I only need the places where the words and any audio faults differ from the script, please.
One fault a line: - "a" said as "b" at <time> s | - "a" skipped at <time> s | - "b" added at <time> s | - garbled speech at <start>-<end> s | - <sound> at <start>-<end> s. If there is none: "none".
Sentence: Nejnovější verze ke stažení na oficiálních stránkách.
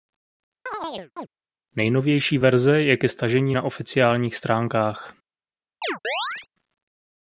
- chirp at 0.7-1.3 s
- "je" added at 2.8 s
- chirp at 5.8-6.5 s